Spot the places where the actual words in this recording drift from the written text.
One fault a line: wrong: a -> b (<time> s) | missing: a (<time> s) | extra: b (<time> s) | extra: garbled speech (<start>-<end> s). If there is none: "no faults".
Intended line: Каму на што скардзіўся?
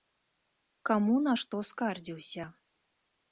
no faults